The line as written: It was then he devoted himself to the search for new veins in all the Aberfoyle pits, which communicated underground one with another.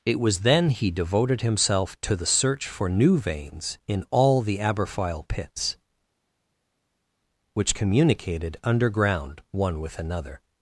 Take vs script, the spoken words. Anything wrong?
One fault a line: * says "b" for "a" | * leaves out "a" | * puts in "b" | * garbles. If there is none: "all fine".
all fine